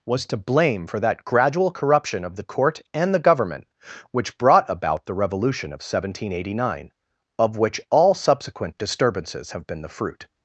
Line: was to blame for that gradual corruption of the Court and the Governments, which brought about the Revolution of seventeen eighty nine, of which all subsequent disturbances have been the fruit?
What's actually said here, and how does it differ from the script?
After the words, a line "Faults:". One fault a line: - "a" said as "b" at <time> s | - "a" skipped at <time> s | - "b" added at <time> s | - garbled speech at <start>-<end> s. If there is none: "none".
was to blame for that gradual corruption of the Court and the Government, which brought about the Revolution of seventeen eighty nine, of which all subsequent disturbances have been the fruit?
Faults:
- "Governments" said as "Government" at 3.2 s